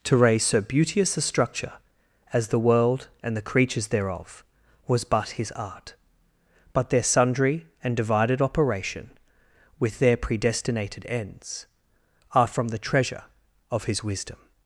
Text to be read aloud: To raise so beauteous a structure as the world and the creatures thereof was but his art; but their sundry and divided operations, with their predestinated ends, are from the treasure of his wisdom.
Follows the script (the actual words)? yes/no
no